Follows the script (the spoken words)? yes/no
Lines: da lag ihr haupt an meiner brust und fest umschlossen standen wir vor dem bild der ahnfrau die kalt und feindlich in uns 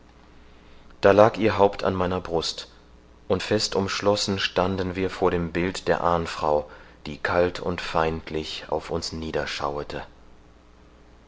no